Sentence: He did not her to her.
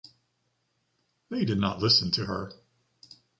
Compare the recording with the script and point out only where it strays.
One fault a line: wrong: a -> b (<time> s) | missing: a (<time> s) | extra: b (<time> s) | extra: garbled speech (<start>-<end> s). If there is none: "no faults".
wrong: He -> They (1.3 s)
wrong: her -> listen (1.8 s)